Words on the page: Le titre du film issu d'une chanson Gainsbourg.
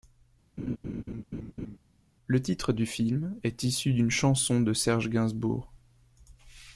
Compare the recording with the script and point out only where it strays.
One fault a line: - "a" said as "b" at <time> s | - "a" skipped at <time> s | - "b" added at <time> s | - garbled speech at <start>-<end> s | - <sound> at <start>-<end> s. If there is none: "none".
- laugh at 0.6-1.8 s
- "est" added at 3.4 s
- "de Serge" added at 4.6 s